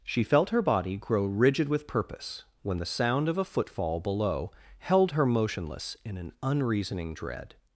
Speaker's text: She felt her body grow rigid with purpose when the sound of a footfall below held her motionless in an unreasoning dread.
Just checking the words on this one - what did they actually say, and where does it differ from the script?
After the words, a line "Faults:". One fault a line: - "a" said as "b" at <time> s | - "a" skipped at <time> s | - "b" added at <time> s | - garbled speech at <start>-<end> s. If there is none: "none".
She felt her body grow rigid with purpose when the sound of a footfall below held her motionless in an unreasoning dread.
Faults:
none